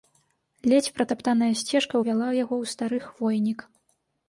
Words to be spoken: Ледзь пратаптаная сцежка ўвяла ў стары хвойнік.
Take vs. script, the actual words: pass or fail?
fail